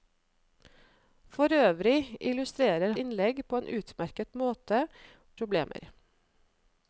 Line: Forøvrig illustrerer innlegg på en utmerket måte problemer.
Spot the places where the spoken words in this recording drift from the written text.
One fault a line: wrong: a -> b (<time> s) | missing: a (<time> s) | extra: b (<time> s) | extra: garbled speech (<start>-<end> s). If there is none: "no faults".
no faults